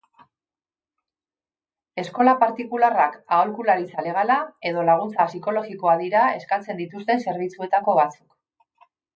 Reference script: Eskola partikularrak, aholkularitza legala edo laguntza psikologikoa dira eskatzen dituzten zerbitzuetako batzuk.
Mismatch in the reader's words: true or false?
false